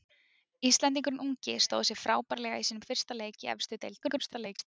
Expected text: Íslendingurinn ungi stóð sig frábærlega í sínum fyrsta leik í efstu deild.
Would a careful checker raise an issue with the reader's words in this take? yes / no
yes